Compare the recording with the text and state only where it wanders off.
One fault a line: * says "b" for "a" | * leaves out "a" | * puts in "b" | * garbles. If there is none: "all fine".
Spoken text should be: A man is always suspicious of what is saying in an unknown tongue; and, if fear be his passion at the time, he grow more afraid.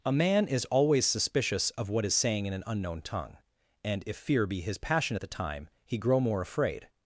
all fine